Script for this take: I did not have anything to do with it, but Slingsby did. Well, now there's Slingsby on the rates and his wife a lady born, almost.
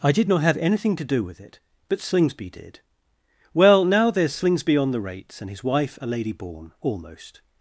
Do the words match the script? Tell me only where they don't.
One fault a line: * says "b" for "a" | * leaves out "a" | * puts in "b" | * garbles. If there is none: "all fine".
all fine